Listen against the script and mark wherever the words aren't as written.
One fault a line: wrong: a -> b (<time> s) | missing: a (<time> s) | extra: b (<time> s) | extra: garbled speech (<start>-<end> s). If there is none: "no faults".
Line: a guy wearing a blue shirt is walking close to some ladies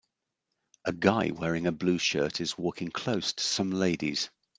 no faults